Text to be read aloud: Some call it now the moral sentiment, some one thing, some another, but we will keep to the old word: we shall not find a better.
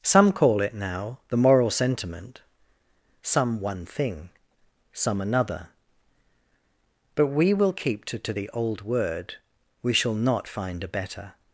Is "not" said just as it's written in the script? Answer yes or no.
yes